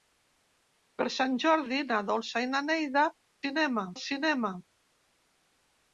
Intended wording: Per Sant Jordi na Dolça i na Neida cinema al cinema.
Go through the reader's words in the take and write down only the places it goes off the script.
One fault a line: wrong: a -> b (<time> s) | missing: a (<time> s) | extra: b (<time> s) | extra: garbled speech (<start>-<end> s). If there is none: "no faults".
no faults